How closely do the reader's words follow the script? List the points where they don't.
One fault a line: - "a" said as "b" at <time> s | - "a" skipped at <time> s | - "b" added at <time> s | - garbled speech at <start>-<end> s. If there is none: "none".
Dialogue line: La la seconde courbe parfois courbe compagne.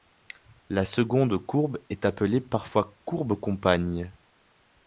- "la" skipped at 0.9 s
- "est appelée" added at 1.9 s